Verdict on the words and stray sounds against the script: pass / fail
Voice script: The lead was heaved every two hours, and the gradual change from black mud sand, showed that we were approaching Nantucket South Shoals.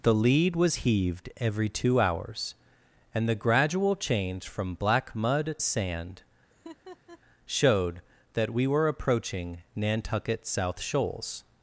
fail